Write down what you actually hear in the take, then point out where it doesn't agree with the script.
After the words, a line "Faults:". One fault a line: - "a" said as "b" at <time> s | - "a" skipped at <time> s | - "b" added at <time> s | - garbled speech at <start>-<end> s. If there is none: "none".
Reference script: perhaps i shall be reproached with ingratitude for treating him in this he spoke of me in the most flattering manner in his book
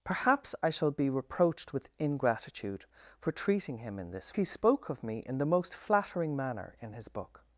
perhaps i shall be reproached with ingratitude for treating him in this he spoke of me in the most flattering manner in his book
Faults:
none